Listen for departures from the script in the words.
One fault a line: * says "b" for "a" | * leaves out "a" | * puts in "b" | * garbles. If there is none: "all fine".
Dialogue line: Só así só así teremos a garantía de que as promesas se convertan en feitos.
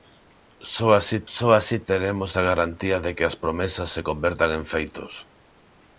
all fine